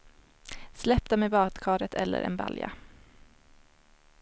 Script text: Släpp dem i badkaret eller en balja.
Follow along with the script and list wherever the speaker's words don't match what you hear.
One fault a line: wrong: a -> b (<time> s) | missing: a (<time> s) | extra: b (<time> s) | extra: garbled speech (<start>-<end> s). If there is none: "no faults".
no faults